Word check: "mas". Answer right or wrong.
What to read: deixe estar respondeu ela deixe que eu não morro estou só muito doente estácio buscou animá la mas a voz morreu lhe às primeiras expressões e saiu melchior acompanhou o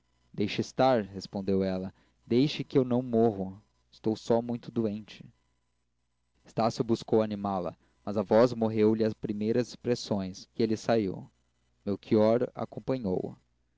right